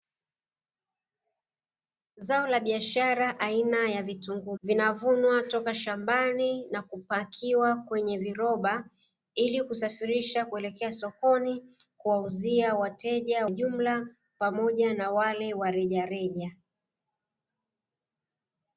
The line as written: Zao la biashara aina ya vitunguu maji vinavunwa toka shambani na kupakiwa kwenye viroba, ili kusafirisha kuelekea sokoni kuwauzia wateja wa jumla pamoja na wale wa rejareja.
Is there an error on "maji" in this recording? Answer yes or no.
yes